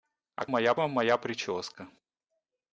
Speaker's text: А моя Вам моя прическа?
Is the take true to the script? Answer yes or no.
yes